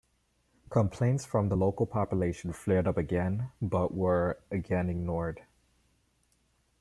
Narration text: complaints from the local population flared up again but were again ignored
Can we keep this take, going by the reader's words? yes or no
yes